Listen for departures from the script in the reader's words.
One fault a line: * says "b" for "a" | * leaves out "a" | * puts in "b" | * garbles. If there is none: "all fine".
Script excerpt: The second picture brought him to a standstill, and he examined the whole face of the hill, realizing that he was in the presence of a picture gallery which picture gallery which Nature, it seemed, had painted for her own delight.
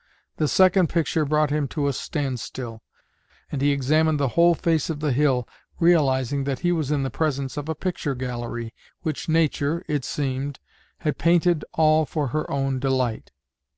* leaves out "picture gallery which"
* puts in "all"